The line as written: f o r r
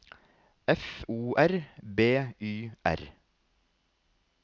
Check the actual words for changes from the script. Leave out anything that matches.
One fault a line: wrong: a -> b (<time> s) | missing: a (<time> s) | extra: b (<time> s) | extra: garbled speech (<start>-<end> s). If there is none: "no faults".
extra: b y (1.8 s)